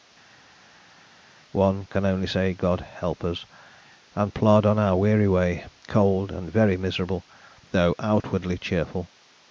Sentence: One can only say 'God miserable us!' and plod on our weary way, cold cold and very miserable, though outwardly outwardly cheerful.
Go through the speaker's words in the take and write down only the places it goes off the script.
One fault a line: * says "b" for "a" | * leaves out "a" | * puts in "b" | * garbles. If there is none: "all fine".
* says "help" for "miserable"
* leaves out "cold"
* leaves out "outwardly"